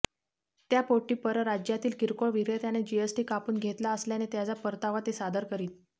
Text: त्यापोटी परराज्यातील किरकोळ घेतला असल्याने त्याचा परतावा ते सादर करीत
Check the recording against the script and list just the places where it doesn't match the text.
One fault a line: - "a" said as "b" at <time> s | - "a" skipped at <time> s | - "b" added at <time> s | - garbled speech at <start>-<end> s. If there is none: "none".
- "विक्रेत्याने जीएसटी कापून" added at 2.3 s